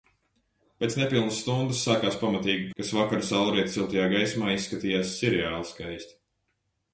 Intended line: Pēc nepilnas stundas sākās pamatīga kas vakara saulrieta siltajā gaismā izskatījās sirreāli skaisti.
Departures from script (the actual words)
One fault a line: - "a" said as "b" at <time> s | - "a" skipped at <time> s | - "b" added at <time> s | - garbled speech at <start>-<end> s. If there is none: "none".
none